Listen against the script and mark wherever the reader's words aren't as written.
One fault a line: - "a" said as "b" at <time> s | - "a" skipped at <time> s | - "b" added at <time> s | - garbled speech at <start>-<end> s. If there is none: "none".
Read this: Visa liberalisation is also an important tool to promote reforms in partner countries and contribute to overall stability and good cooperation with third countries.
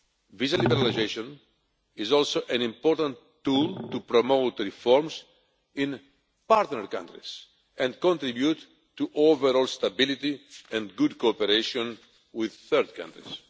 none